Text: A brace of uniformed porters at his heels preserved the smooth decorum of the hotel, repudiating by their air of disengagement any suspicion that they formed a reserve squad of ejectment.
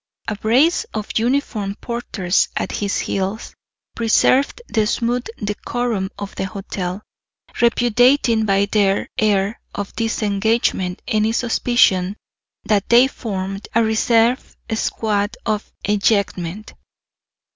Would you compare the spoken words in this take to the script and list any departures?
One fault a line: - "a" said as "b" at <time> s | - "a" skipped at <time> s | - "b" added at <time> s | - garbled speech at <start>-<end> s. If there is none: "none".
none